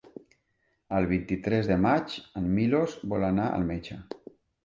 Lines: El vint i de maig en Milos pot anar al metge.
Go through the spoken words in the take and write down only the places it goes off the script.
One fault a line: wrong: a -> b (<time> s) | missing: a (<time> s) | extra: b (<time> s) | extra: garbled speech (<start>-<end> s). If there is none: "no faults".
extra: tres (1.5 s)
wrong: pot -> vol (3.1 s)